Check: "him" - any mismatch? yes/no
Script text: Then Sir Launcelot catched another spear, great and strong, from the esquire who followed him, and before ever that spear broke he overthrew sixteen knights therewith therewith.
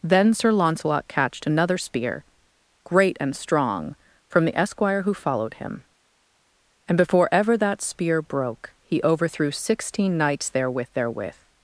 no